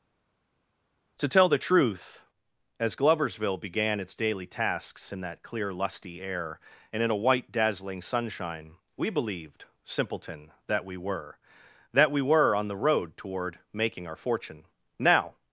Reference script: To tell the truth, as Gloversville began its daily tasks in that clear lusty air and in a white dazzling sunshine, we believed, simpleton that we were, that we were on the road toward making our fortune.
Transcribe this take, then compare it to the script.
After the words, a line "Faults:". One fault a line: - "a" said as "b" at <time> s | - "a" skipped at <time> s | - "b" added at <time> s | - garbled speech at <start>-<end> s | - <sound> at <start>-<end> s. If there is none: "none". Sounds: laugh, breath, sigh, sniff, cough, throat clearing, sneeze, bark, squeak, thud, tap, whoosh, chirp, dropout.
To tell the truth, as Gloversville began its daily tasks in that clear lusty air and in a white dazzling sunshine, we believed, simpleton that we were, that we were on the road toward making our fortune. Now
Faults:
- "Now" added at 15.0 s